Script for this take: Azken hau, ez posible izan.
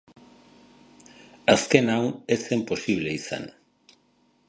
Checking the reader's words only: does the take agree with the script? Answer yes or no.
no